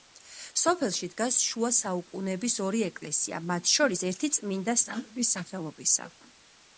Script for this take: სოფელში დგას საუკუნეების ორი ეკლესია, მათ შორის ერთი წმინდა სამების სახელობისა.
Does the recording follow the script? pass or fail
fail